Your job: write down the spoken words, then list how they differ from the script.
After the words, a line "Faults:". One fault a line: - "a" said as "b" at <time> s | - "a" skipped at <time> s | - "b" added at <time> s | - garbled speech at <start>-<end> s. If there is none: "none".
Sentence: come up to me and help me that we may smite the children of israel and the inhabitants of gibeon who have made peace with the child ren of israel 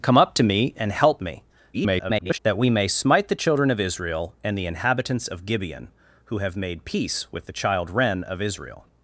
come up to me and help me [garbled] that we may smite the children of israel and the inhabitants of gibeon who have made peace with the child ren of israel
Faults:
- garbled speech at 1.7-2.4 s